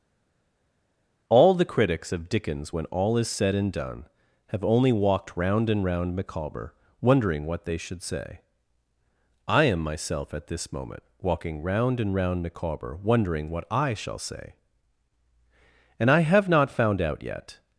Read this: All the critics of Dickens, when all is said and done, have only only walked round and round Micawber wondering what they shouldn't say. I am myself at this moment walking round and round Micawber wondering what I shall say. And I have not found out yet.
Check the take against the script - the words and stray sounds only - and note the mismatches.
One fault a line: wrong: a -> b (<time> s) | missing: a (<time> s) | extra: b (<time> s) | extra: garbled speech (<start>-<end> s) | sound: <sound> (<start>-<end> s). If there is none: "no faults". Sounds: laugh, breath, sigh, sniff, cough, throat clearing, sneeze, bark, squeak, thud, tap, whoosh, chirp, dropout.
missing: only (4.9 s)
wrong: shouldn't -> should (7.8 s)